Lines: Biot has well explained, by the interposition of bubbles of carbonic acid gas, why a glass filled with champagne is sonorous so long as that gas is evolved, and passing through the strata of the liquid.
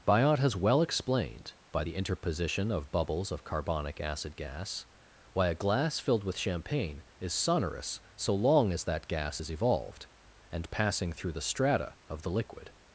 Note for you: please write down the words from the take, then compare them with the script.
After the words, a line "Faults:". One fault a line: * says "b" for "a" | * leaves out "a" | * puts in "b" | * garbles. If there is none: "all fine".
Biot has well explained, by the interposition of bubbles of carbonic acid gas, why a glass filled with champagne is sonorous so long as that gas is evolved, and passing through the strata of the liquid.
Faults:
all fine